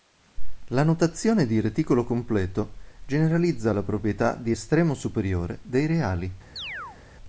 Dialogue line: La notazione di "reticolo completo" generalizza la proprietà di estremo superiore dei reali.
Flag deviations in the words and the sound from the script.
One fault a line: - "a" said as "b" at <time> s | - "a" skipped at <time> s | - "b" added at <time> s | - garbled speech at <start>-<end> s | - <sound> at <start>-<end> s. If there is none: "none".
- chirp at 6.6-7.0 s